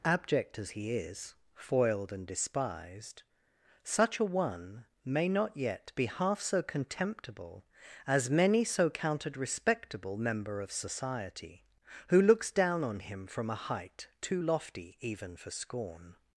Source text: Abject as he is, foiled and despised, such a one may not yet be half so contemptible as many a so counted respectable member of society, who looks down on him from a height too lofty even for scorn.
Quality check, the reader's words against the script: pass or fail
fail